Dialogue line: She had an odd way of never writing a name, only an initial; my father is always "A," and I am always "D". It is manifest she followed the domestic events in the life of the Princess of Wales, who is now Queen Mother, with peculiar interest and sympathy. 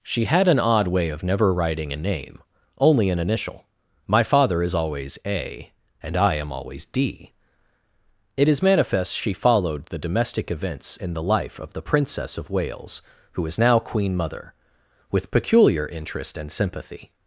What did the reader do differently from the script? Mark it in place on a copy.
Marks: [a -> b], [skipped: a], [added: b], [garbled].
She had an odd way of never writing a name, only an initial; my father is always "A," and I am always "D". It is manifest she followed the domestic events in the life of the Princess of Wales, who is now Queen Mother, with peculiar interest and sympathy.